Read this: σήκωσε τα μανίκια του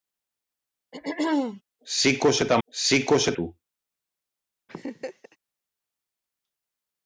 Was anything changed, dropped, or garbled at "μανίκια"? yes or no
yes